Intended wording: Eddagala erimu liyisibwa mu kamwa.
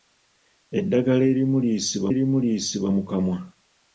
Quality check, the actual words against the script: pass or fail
fail